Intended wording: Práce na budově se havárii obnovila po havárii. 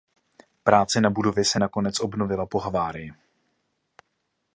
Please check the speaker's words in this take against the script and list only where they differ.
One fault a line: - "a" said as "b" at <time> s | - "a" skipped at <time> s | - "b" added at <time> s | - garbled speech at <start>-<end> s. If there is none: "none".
- "havárii" said as "nakonec" at 1.6 s